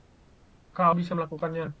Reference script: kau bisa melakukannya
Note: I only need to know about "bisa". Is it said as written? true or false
true